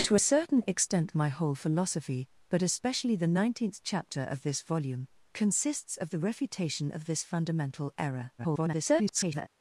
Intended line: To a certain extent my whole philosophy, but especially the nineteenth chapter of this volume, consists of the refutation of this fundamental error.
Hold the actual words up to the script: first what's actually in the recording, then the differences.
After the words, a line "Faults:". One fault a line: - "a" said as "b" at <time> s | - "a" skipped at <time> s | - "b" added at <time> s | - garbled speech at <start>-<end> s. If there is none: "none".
To a certain extent my whole philosophy, but especially the nineteenth chapter of this volume, consists of the refutation of this fundamental error. [garbled]
Faults:
- garbled speech at 8.4-9.5 s